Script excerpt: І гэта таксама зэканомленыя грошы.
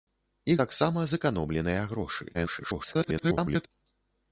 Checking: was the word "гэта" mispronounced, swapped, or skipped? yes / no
yes